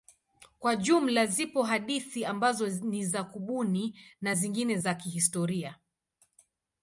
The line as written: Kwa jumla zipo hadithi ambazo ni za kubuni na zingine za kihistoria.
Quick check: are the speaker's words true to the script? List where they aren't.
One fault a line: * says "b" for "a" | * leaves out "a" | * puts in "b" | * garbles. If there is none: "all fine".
all fine